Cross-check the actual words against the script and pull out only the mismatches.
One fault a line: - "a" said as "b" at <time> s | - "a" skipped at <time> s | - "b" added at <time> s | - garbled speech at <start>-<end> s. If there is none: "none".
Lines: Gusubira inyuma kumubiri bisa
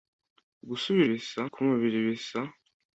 - "inyuma" said as "bisa" at 1.1 s